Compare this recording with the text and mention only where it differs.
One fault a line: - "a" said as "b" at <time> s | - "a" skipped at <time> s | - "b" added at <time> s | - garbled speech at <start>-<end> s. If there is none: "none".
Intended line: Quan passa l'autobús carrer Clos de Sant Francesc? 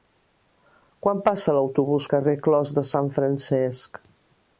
none